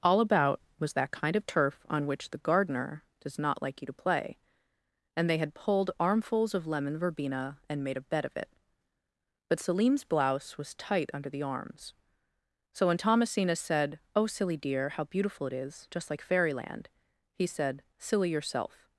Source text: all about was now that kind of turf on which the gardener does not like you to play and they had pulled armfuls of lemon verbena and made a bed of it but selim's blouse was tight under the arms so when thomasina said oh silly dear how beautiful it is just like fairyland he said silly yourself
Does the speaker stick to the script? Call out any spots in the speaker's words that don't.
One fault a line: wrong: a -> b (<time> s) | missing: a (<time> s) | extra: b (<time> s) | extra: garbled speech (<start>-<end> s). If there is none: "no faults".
missing: now (0.9 s)